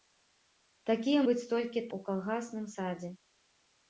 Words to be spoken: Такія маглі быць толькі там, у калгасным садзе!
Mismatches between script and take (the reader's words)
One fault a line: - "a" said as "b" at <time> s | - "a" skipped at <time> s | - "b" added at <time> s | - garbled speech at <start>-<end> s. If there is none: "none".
- "маглі" skipped at 1.2 s
- "там" skipped at 1.8 s